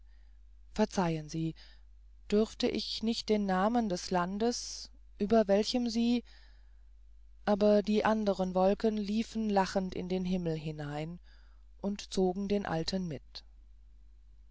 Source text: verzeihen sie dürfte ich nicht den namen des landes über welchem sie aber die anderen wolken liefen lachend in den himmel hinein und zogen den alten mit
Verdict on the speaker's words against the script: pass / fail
pass